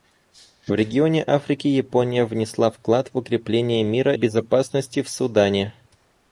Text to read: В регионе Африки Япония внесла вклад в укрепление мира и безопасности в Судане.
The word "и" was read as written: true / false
false